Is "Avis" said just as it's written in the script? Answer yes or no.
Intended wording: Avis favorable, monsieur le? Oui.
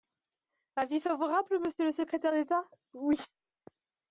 yes